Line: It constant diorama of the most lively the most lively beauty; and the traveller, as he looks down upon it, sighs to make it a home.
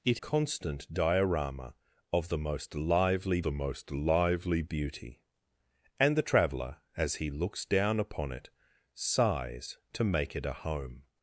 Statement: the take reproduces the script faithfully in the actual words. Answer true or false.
true